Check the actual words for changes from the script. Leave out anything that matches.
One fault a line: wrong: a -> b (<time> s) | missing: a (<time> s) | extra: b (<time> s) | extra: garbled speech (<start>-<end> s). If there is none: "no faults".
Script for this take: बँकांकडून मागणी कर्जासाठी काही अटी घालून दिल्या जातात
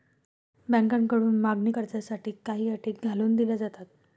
no faults